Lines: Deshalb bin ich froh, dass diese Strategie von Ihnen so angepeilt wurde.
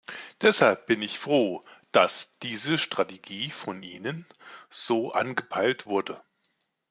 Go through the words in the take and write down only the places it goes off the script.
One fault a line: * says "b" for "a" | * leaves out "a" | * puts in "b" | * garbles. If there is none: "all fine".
all fine